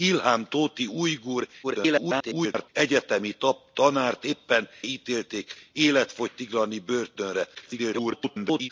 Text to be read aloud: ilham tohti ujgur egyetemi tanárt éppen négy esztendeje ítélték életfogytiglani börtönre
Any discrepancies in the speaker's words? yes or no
yes